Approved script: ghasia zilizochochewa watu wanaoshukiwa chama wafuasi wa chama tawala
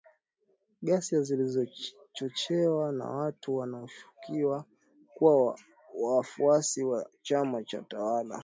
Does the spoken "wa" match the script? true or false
true